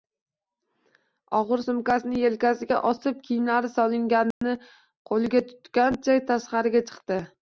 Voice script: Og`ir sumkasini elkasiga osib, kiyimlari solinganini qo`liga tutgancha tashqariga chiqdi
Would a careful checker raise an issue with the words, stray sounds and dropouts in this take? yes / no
yes